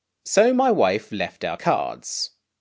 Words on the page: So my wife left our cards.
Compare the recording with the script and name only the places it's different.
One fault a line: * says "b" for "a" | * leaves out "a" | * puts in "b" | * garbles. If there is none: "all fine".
all fine